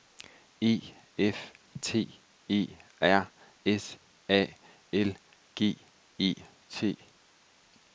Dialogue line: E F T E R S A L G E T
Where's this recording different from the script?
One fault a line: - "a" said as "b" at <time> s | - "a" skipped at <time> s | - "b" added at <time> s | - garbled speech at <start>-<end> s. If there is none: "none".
none